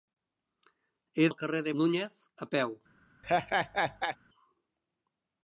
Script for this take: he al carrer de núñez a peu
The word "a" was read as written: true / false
true